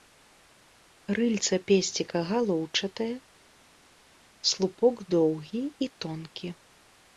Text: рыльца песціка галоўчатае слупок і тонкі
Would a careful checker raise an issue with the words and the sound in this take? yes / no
yes